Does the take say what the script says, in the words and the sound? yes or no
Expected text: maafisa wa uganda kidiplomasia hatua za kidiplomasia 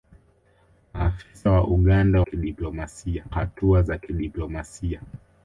yes